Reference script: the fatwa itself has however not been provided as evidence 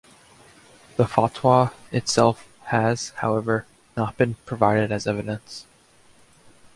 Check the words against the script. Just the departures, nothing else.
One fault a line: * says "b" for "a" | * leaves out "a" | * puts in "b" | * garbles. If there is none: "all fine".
all fine